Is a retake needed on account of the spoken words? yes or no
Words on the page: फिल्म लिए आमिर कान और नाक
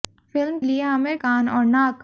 no